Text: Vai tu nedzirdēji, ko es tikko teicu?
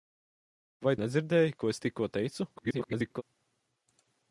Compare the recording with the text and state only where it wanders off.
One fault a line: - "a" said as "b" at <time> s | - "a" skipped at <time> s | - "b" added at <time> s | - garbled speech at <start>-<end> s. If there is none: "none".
- "tu" skipped at 0.9 s
- garbled speech at 2.6-3.2 s